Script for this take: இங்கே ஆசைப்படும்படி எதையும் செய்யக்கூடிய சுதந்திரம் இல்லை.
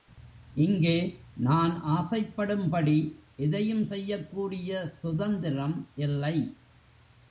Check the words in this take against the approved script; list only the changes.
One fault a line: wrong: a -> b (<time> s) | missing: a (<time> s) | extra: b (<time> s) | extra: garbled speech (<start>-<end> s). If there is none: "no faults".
extra: நான் (1.5 s)